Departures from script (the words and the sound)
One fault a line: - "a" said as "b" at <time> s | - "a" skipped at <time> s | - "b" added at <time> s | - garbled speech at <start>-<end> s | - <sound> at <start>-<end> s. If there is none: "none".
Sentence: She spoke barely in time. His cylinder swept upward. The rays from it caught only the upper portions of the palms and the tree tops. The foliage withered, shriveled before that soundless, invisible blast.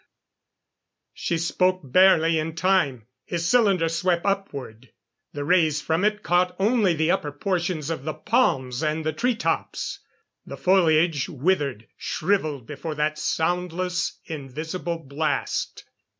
none